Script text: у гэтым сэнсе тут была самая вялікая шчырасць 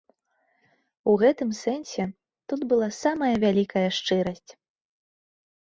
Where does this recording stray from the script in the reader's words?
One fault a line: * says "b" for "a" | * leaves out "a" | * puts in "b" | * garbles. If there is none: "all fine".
all fine